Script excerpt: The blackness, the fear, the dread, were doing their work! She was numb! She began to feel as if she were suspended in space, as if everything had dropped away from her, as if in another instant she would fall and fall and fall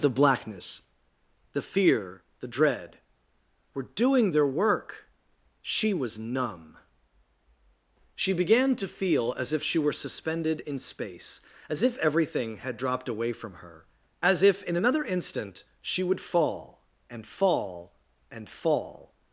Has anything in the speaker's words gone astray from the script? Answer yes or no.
no